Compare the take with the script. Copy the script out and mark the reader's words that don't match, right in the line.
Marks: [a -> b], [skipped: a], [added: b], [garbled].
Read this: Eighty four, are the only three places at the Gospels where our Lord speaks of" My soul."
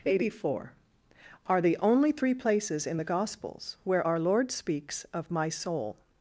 Eighty four, are the only three places [at -> in] the Gospels where our Lord speaks of" My soul."